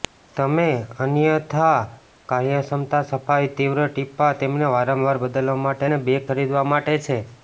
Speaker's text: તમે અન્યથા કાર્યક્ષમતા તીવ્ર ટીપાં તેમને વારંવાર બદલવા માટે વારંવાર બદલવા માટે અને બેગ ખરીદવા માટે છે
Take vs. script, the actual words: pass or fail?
fail